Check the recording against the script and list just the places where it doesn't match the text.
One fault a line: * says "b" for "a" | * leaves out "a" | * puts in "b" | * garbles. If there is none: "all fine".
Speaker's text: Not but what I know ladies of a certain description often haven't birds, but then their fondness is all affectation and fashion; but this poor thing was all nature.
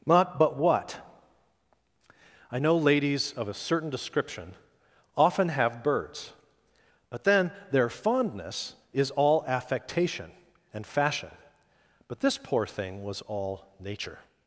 * says "have" for "haven't"